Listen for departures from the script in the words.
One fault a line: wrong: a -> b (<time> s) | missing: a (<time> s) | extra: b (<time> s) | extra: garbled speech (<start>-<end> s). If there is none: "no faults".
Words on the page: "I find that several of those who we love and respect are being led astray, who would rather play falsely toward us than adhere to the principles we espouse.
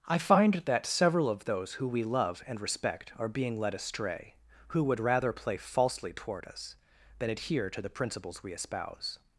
no faults